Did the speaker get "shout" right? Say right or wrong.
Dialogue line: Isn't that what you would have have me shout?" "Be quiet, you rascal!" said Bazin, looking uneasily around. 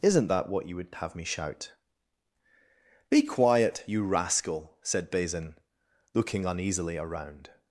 right